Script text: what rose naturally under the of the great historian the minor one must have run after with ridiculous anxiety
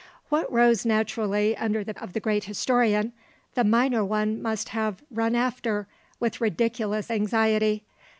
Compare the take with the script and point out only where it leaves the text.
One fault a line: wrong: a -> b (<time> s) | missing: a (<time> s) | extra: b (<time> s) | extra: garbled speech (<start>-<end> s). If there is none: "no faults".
no faults